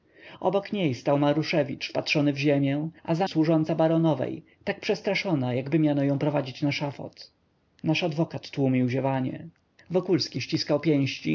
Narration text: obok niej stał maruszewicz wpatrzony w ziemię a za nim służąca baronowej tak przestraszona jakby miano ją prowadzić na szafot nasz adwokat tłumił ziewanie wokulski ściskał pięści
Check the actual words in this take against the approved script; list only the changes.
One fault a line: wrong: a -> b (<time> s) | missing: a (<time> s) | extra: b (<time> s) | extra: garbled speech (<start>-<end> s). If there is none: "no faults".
missing: nim (3.3 s)